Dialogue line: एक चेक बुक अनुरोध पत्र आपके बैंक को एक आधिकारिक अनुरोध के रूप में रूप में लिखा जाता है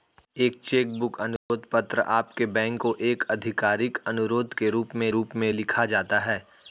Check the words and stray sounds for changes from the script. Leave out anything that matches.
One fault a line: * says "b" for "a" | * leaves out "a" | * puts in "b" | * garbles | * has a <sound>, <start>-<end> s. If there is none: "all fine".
* has a dropout, 1.4-1.5 s